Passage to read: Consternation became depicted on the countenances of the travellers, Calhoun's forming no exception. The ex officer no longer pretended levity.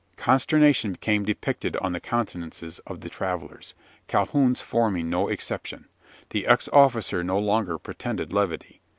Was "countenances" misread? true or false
false